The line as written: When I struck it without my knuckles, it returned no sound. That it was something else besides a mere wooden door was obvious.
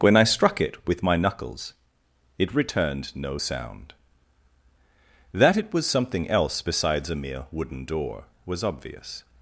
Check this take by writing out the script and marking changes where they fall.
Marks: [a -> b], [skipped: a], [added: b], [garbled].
When I struck it [without -> with] my knuckles, it returned no sound. That it was something else besides a mere wooden door was obvious.